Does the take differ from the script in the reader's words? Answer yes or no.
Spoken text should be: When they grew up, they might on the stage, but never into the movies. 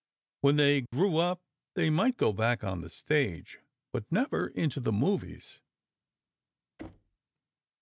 yes